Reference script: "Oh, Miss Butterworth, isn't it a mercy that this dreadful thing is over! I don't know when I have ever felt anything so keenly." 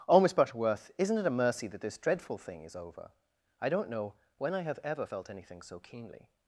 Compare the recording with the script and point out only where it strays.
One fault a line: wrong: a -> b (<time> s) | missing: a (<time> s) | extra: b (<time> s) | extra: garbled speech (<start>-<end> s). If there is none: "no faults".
no faults